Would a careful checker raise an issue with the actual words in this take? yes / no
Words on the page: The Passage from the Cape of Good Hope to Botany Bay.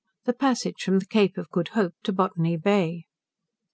no